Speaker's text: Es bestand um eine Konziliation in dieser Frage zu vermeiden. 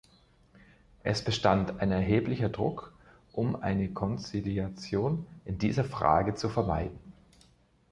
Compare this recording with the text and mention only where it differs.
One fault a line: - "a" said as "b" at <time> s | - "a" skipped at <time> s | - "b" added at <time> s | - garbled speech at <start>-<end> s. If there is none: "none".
- "ein erheblicher Druck" added at 1.8 s